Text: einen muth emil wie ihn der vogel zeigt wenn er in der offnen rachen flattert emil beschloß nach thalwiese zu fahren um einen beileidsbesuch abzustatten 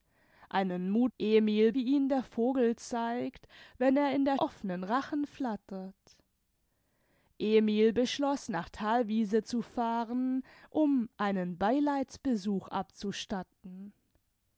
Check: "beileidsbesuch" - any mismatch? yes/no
no